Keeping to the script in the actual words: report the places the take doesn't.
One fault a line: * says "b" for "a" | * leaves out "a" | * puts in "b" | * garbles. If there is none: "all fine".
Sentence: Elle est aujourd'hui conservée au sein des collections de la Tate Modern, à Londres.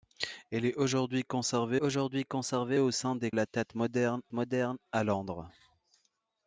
* puts in "aujourd'hui conservée"
* leaves out "collections de"
* puts in "Modern"